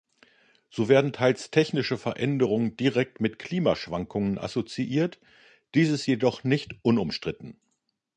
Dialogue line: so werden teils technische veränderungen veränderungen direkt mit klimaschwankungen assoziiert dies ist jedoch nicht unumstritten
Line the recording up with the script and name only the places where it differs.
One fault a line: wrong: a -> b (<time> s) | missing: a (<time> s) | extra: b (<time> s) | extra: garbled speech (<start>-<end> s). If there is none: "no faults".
missing: veränderungen (2.8 s)